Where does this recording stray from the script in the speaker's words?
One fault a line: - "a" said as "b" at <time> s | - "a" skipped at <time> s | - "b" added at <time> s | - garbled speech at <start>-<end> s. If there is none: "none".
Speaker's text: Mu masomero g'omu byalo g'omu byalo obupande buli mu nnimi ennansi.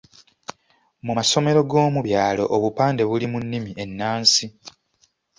- "g'omu byalo" skipped at 2.4 s